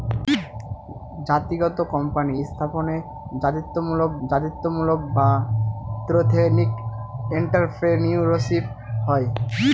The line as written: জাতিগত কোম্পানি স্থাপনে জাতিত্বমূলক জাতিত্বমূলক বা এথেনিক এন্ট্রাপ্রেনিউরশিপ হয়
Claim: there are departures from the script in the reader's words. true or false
false